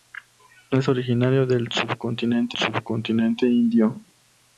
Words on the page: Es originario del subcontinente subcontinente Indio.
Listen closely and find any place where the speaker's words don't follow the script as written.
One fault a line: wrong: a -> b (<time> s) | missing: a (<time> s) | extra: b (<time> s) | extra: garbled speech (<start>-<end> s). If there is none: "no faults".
no faults